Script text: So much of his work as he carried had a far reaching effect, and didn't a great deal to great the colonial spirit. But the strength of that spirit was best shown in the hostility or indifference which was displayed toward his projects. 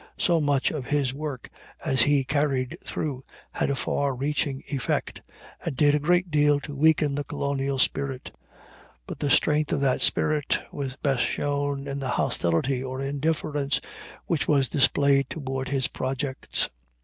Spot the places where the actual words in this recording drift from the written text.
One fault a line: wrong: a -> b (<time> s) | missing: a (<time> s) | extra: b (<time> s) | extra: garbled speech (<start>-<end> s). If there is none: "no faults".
extra: through (2.8 s)
wrong: didn't -> did (5.8 s)
wrong: great -> weaken (6.8 s)